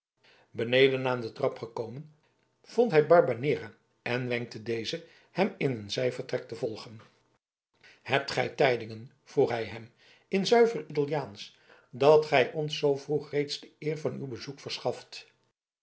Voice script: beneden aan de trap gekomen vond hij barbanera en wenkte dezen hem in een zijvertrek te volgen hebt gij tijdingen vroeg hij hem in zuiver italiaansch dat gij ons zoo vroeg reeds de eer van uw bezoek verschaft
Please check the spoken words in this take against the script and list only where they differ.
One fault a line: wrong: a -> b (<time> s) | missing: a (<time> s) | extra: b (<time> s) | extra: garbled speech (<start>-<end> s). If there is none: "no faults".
no faults